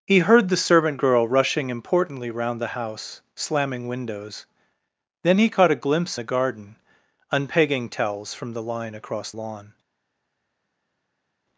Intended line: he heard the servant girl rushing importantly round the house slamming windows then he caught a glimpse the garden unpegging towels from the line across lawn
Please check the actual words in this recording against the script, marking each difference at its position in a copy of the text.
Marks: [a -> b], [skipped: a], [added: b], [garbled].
he heard the servant girl rushing importantly round the house slamming windows then he caught a glimpse the garden unpegging towels from the line across lawn